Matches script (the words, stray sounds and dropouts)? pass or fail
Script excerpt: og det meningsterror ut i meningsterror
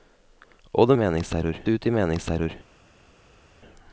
pass